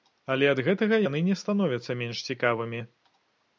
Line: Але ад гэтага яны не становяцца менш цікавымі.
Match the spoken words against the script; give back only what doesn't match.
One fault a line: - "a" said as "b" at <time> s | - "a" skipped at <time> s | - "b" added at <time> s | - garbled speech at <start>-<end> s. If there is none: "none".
none